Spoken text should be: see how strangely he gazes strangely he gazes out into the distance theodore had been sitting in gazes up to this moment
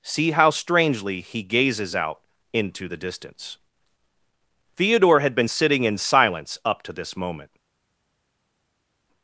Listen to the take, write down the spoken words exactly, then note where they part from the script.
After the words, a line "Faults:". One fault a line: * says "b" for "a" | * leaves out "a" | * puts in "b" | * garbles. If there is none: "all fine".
see how strangely he gazes out into the distance theodore had been sitting in silence up to this moment
Faults:
* leaves out "strangely he gazes"
* says "silence" for "gazes"